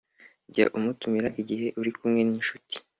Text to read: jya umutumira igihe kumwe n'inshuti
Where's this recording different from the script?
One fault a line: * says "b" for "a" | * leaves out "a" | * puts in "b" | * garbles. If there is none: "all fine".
* puts in "uri"